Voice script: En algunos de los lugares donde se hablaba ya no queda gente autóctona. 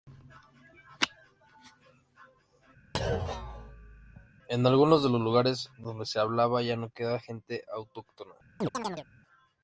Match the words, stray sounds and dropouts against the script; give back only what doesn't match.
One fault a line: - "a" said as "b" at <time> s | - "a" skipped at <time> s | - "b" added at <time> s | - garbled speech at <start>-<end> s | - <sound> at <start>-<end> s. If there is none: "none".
- thud at 2.9-4.3 s
- chirp at 8.6-9.1 s